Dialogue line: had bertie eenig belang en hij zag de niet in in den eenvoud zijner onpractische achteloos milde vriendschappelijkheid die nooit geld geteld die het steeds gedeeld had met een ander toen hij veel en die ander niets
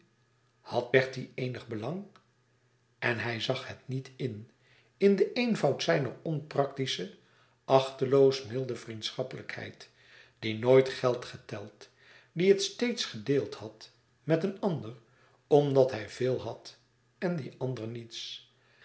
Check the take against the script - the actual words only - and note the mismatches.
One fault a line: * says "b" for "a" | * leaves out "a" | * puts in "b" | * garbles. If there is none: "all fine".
* says "het" for "de"
* says "omdat" for "toen"
* puts in "had"